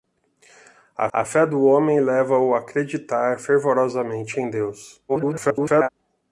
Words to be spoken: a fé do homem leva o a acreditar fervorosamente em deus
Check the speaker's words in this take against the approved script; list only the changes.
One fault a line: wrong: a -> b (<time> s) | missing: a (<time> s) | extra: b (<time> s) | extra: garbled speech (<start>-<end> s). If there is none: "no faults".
extra: a (1.1 s)
extra: garbled speech (5.1-5.9 s)